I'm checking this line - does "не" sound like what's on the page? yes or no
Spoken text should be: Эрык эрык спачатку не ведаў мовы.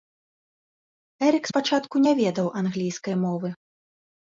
yes